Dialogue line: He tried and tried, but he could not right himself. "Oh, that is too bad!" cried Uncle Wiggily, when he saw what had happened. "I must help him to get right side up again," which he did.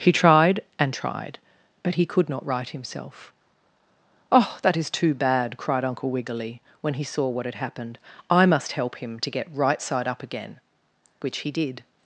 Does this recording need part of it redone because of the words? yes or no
no